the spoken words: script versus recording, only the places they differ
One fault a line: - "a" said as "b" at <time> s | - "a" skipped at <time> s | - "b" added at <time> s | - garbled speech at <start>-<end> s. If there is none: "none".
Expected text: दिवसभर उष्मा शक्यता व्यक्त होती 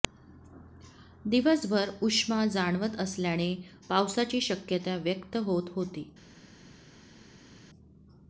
- "जाणवत असल्याने पावसाची" added at 2.5 s
- "होत" added at 5.4 s